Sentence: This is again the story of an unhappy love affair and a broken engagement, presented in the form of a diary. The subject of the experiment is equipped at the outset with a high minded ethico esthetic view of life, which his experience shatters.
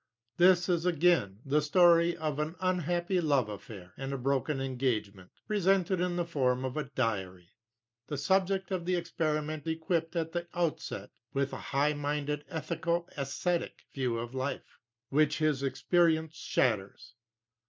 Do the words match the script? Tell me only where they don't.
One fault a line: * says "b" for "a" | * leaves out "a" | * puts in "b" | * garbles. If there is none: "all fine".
* leaves out "is"